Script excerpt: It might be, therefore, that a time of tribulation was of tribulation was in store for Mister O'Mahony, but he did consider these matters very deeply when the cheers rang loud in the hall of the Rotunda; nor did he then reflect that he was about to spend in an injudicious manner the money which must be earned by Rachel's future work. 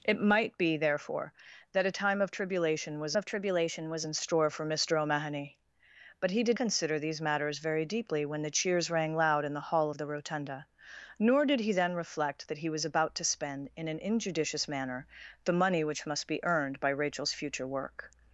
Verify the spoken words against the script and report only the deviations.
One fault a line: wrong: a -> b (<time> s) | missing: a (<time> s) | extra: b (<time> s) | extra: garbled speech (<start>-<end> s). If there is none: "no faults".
no faults